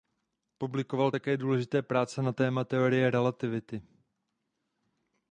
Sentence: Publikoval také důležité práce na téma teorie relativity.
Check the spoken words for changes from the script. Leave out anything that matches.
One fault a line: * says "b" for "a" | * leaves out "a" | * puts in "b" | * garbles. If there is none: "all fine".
all fine